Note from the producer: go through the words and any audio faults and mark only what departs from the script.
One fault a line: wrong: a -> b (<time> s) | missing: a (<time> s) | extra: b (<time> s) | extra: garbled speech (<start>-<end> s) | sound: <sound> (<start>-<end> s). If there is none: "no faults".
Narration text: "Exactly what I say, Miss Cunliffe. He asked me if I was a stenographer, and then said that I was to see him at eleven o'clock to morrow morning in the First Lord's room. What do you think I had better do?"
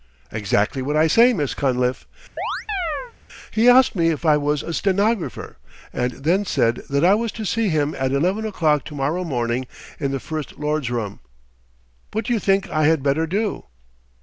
sound: chirp (2.4-3.1 s)